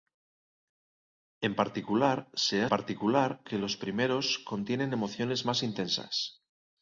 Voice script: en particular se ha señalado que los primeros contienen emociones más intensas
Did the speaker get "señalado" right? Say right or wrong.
wrong